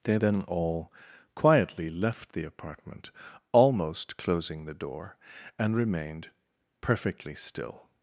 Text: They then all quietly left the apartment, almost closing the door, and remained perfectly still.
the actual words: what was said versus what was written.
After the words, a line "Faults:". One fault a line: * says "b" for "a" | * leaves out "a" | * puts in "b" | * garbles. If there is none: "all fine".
They then all quietly left the apartment, almost closing the door, and remained perfectly still.
Faults:
all fine